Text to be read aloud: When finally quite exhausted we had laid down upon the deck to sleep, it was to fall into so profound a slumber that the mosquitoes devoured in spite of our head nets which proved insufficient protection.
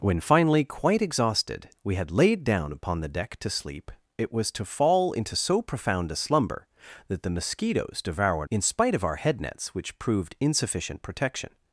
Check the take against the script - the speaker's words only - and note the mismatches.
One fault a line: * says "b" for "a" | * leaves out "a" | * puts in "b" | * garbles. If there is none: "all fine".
all fine